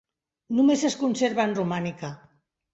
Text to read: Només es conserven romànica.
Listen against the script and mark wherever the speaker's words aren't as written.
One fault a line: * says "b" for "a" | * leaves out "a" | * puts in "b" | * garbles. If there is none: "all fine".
all fine